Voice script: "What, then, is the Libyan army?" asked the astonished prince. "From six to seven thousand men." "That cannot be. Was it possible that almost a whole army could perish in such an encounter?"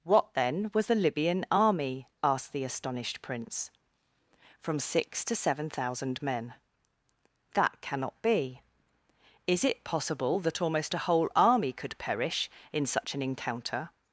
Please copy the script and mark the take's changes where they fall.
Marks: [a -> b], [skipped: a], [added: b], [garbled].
"What, then, [is -> was] the Libyan army?" asked the astonished prince. "From six to seven thousand men." "That cannot be. [Was -> Is] it possible that almost a whole army could perish in such an encounter?"